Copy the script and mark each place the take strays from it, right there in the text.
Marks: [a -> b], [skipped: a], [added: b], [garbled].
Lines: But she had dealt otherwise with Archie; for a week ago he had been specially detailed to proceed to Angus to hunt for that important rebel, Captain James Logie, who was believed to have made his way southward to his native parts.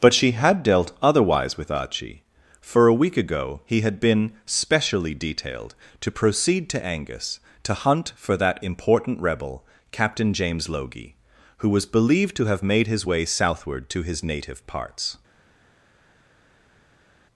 But she had dealt otherwise with Archie; for a week ago he had been specially detailed to proceed to Angus to hunt for that important rebel, Captain James Logie, who was believed to have made his way southward to his native parts.